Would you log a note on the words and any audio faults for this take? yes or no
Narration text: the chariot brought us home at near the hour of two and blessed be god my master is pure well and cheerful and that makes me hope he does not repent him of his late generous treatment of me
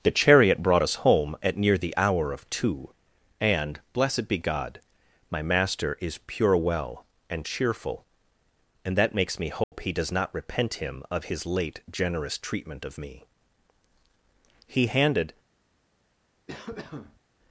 yes